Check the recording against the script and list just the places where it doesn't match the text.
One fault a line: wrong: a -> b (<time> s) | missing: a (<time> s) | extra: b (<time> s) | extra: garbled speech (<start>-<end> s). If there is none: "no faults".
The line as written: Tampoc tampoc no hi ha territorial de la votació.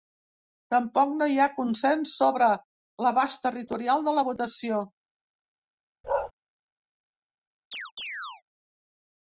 missing: tampoc (1.1 s)
extra: consens sobre l'abast (1.6 s)